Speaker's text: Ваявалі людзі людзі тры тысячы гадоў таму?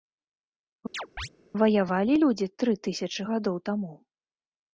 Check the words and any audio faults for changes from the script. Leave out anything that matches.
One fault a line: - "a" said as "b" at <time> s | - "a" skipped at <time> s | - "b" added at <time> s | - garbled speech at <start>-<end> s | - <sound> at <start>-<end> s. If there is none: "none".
- chirp at 0.9-1.3 s
- "людзі" skipped at 2.5 s